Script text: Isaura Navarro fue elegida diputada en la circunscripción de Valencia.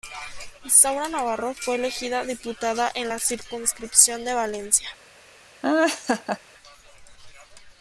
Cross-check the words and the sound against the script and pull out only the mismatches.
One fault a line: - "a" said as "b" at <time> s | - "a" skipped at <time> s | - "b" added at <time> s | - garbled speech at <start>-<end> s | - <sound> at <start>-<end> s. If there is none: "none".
- laugh at 5.6-6.4 s